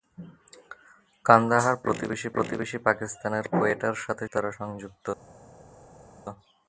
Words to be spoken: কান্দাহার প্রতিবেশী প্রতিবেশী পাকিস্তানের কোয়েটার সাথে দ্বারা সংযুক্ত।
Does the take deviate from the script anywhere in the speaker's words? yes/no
no